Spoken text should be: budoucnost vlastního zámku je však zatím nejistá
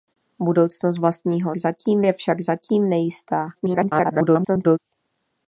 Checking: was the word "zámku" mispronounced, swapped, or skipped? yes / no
yes